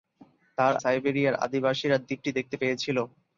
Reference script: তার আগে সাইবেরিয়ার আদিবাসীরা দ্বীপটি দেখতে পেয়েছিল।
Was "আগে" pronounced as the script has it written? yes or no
no